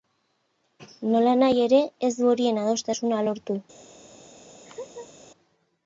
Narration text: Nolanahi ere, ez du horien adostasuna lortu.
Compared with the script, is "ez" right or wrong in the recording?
right